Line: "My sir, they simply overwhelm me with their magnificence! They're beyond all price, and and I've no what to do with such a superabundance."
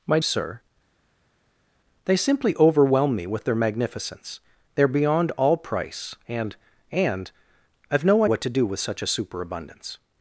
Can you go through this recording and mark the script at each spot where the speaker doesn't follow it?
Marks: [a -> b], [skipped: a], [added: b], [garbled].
"My sir, they simply overwhelm me with their magnificence! They're beyond all price, and and I've no what to do with such a superabundance."